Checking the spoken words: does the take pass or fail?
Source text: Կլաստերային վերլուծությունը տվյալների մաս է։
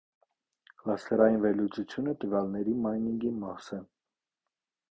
fail